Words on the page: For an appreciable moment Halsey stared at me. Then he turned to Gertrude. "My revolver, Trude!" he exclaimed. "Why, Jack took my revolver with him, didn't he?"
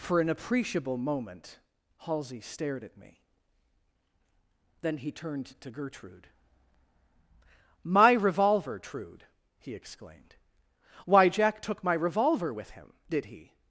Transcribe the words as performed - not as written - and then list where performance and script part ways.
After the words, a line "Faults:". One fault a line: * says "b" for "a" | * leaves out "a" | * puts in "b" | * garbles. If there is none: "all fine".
For an appreciable moment Halsey stared at me. Then he turned to Gertrude. "My revolver, Trude!" he exclaimed. "Why, Jack took my revolver with him, did he?"
Faults:
* says "did" for "didn't"